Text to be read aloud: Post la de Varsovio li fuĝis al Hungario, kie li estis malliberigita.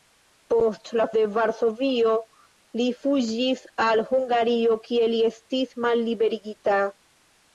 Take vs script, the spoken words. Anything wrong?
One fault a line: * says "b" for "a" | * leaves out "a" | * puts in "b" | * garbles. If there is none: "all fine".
all fine